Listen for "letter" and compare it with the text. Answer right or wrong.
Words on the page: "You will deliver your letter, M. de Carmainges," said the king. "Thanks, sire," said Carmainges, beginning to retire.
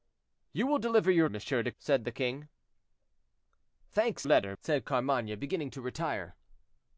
wrong